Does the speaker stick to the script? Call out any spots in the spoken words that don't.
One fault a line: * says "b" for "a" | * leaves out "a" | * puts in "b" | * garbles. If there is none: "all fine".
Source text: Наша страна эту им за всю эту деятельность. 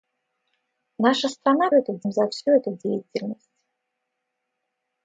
all fine